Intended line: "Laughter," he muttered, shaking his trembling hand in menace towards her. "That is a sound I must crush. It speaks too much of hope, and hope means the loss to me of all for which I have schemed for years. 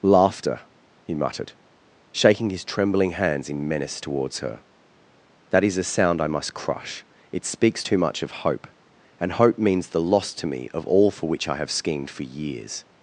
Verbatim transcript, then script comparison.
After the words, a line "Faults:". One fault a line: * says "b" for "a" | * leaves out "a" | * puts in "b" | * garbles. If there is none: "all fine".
"Laughter," he muttered, shaking his trembling hands in menace towards her. "That is a sound I must crush. It speaks too much of hope, and hope means the loss to me of all for which I have schemed for years.
Faults:
* says "hands" for "hand"